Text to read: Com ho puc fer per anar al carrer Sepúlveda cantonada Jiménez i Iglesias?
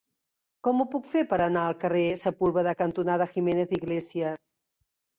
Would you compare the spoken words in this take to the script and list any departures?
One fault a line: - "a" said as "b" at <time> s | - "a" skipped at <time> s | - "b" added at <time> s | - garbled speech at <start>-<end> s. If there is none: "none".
none